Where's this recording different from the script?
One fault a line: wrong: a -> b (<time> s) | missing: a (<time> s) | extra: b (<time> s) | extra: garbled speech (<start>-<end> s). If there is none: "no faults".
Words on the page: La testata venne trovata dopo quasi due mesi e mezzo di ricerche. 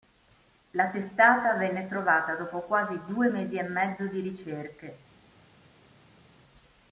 no faults